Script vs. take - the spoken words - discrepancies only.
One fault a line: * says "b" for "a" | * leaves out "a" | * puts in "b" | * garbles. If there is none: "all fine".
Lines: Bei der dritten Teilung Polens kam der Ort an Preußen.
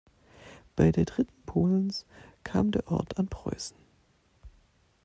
* leaves out "Teilung"